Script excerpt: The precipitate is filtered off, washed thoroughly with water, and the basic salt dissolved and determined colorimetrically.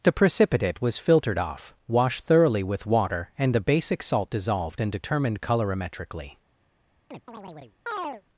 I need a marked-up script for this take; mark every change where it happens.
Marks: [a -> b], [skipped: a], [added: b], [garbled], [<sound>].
The precipitate [is -> was] filtered off, washed thoroughly with water, and the basic salt dissolved and determined colorimetrically. [chirp]